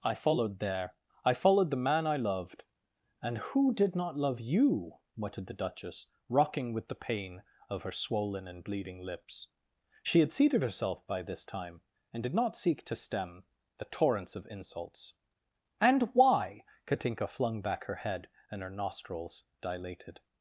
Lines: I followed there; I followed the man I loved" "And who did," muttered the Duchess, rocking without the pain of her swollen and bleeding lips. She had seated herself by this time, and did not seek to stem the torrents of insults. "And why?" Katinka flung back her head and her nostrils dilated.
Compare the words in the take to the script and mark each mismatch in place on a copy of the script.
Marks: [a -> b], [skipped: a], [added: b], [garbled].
I followed there; I followed the man I loved" "And who did," [added: not love you] muttered the Duchess, rocking [without -> with] the pain of her swollen and bleeding lips. She had seated herself by this time, and did not seek to stem the torrents of insults. "And why?" Katinka flung back her head and her nostrils dilated.